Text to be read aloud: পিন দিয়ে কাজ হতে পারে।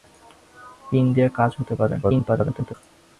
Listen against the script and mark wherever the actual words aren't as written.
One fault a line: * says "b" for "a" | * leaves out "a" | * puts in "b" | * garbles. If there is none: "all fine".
* garbles